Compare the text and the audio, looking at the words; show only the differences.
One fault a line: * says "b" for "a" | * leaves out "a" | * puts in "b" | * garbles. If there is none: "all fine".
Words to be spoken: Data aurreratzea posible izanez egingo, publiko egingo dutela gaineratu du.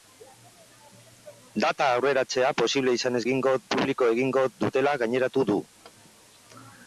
all fine